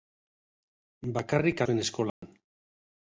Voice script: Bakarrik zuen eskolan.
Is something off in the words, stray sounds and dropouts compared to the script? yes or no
yes